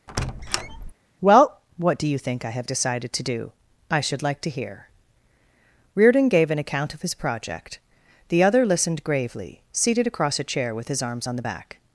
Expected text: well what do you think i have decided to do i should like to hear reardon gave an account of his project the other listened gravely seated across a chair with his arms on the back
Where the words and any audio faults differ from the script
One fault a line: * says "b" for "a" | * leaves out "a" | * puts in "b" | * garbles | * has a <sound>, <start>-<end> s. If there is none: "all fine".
* has a squeak, 0.1-0.9 s